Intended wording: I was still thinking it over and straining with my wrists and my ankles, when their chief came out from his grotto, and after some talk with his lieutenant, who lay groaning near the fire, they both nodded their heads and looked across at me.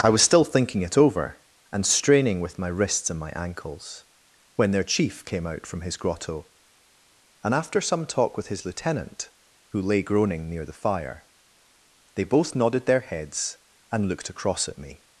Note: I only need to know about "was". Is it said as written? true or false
true